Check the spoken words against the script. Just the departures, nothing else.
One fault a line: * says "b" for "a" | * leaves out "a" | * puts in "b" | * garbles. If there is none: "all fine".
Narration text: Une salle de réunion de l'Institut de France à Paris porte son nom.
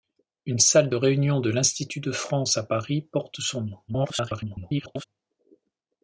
* garbles